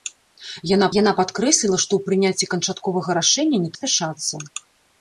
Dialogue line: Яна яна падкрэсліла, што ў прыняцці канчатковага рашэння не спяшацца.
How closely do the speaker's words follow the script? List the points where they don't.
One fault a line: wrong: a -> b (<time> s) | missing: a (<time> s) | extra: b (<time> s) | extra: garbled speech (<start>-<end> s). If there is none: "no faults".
no faults